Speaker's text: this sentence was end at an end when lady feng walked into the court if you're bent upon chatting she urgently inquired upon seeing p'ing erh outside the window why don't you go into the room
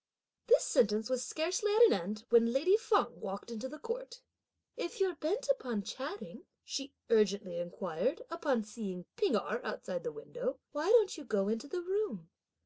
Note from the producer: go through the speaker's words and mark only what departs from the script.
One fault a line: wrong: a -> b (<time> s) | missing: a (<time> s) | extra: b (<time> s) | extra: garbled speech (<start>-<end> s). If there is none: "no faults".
wrong: end -> scarcely (1.3 s)